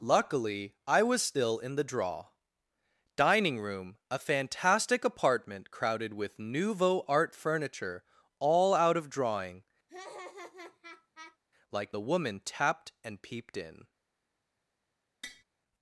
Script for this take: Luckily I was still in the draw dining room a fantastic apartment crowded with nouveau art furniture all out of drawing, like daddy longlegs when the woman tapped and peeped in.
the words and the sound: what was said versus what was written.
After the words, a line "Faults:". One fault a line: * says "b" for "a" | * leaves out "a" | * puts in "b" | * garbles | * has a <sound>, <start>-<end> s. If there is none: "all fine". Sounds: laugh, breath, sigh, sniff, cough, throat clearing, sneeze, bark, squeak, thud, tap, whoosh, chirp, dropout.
Luckily I was still in the draw dining room a fantastic apartment crowded with nouveau art furniture all out of drawing, like the woman tapped and peeped in.
Faults:
* has a laugh, 9.9-11.4 s
* leaves out "daddy longlegs when"
* has a tap, 15.2-15.4 s